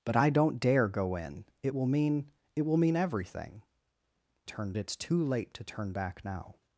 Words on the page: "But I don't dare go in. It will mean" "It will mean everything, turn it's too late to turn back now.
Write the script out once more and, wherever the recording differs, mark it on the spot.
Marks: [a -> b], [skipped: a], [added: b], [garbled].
"But I don't dare go in. It will mean" "It will mean everything, turn it's too late to turn back now.